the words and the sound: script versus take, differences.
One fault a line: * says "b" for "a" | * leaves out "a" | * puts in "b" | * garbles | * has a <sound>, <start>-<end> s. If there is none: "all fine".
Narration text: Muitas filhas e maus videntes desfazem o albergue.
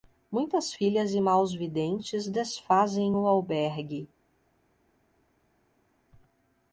all fine